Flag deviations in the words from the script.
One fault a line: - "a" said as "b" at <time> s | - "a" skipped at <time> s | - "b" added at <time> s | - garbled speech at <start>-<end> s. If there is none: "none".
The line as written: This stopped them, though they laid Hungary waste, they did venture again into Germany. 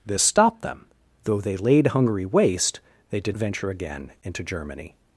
none